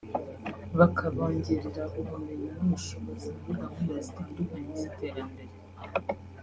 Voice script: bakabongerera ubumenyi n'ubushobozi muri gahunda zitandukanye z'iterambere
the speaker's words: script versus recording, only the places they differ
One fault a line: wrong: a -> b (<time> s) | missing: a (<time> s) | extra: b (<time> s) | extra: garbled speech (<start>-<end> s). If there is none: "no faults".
no faults